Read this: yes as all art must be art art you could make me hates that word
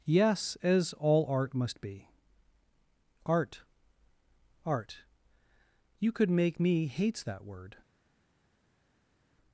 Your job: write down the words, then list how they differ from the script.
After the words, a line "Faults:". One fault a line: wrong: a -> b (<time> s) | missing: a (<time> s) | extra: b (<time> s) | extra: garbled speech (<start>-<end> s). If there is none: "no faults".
yes as all art must be art art you could make me hates that word
Faults:
no faults